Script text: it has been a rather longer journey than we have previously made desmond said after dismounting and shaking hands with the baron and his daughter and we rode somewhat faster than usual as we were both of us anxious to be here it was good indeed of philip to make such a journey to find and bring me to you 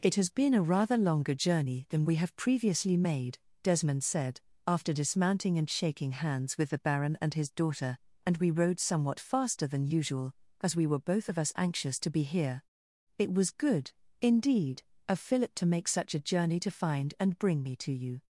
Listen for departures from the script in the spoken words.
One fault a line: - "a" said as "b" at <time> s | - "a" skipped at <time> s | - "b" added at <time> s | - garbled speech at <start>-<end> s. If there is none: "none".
none